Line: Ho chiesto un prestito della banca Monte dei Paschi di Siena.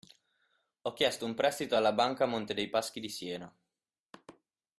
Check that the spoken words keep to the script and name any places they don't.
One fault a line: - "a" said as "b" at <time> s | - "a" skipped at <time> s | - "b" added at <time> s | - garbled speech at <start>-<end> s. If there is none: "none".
- "della" said as "alla" at 1.8 s